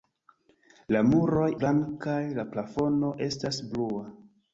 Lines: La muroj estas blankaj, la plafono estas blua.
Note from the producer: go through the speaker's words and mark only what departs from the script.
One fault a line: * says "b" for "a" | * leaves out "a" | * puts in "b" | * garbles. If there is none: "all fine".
* leaves out "estas"